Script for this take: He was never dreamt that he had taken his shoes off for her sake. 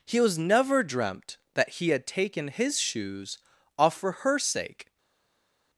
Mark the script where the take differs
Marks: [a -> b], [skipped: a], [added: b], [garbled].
He was never dreamt that he had taken his shoes off for her sake.